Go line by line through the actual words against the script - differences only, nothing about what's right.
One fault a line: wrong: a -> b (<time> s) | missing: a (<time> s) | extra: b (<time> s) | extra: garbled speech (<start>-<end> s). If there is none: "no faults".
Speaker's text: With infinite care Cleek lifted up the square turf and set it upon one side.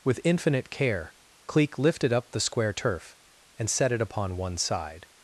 no faults